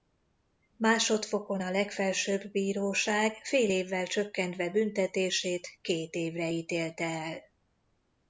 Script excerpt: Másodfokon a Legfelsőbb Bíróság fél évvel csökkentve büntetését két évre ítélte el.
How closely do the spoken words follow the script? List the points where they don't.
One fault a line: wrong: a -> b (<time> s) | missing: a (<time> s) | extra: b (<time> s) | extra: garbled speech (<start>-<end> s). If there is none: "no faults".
no faults